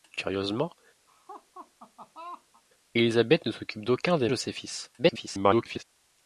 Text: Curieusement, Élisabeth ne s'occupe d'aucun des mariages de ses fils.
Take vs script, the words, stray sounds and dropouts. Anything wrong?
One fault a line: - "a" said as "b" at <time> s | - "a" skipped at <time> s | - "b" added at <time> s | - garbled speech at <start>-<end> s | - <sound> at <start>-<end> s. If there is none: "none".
- laugh at 1.1-2.6 s
- "mariages" skipped at 4.3 s
- garbled speech at 5.0-5.8 s